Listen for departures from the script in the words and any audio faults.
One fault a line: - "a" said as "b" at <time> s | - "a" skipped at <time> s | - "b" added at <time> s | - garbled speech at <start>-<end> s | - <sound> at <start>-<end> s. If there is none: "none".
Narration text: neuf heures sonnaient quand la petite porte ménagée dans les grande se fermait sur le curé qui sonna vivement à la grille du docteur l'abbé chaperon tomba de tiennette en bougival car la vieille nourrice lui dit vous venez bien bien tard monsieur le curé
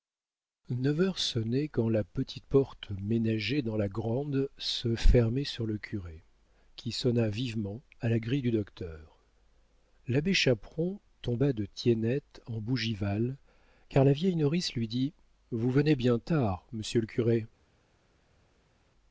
- "les" said as "la" at 3.8 s
- "bien" skipped at 16.2 s